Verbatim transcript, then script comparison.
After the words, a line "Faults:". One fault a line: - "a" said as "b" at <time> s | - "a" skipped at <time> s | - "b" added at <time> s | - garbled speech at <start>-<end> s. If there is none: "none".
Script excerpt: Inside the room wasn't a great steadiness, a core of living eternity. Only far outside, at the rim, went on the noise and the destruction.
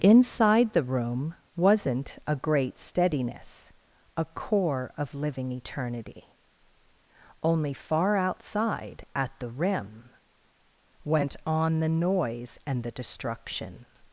Inside the room wasn't a great steadiness, a core of living eternity. Only far outside, at the rim, went on the noise and the destruction.
Faults:
none